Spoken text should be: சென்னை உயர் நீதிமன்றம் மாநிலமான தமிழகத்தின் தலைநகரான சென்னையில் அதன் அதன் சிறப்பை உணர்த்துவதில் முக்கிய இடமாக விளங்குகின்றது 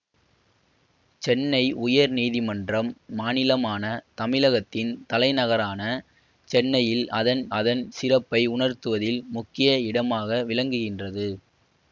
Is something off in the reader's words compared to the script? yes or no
no